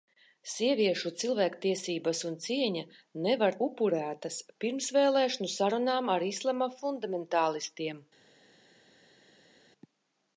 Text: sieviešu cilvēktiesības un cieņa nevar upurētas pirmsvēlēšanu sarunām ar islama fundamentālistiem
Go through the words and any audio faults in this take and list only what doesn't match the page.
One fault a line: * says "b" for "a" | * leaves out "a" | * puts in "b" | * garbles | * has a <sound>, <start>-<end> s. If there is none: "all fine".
all fine